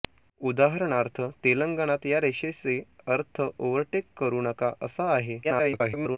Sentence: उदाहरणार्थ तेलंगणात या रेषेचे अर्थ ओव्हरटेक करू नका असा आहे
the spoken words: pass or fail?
fail